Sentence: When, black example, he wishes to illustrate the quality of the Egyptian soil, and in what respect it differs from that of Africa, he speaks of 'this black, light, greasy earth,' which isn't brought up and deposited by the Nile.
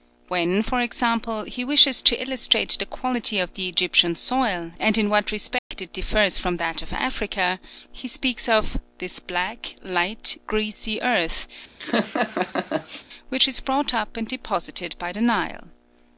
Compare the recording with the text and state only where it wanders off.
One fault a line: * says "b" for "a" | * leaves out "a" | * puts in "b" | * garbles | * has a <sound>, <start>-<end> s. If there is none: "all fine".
* says "for" for "black"
* has a dropout, 5.6-5.7 s
* has a laugh, 11.8-13.0 s
* says "is" for "isn't"